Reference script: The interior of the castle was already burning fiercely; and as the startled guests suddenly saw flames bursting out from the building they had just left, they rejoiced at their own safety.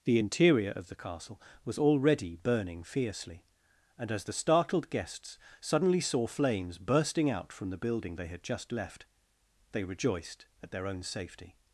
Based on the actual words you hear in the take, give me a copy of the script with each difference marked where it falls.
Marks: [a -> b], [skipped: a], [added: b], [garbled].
The interior of the castle was already burning fiercely; and as the startled guests suddenly saw flames bursting out from the building they had just left, they rejoiced at their own safety.